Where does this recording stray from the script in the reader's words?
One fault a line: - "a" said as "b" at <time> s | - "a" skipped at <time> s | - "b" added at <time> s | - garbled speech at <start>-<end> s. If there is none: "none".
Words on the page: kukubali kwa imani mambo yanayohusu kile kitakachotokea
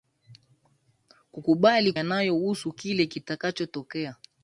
- "kwa imani mambo" skipped at 1.9 s